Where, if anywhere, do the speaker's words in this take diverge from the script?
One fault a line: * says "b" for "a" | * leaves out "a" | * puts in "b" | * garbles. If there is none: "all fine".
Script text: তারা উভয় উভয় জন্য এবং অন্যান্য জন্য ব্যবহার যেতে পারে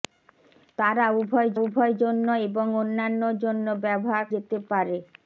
all fine